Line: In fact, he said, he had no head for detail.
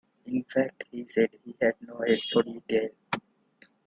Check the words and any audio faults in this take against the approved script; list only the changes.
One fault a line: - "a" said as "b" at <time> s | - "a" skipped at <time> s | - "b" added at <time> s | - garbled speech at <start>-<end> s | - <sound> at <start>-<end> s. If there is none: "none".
none